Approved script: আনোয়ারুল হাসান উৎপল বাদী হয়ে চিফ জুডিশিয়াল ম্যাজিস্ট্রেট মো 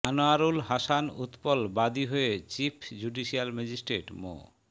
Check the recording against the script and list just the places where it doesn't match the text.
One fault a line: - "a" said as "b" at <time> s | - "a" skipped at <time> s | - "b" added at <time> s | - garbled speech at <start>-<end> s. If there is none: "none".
none